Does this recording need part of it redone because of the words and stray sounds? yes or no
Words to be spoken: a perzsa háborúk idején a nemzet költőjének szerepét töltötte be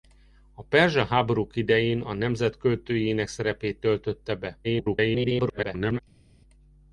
yes